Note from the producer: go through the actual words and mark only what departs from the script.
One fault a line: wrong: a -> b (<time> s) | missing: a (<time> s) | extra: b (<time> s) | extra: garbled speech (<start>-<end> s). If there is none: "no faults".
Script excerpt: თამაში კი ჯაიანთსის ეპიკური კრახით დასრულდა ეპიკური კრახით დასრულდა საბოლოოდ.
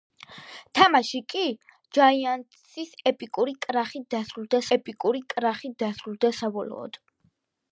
no faults